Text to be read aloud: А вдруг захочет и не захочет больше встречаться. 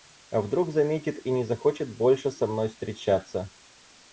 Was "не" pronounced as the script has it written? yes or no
yes